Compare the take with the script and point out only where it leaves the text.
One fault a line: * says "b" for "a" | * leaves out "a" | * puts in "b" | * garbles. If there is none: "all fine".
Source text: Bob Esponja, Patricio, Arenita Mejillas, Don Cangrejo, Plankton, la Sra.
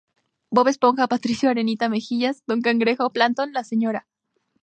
all fine